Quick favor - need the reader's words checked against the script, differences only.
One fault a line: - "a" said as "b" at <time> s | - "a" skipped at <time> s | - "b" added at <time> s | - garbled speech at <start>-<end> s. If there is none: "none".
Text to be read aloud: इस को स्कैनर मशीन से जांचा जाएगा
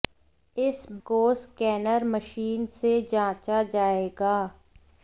none